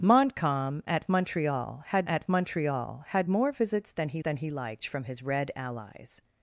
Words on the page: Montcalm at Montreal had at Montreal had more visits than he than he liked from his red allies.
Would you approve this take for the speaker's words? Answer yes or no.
yes